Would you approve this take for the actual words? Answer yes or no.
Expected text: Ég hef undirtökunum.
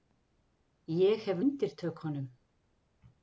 yes